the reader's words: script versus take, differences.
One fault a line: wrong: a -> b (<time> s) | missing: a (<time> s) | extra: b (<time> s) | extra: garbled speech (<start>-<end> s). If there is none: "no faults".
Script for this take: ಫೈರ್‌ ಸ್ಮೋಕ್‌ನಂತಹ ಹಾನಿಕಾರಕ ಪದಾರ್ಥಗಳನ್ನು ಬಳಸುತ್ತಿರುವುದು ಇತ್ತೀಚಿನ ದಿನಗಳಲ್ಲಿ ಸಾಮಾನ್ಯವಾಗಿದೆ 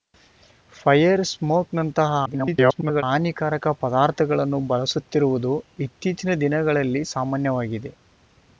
extra: garbled speech (2.3-3.0 s)